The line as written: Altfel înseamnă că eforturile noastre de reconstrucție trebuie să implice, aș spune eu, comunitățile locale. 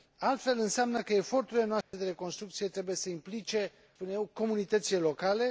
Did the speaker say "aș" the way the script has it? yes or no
no